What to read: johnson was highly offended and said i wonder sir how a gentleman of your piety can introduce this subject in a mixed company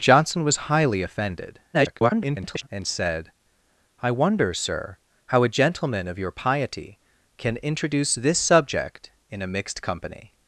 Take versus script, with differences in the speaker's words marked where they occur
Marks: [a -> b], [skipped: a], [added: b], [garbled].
johnson was highly offended [garbled] and said i wonder sir how a gentleman of your piety can introduce this subject in a mixed company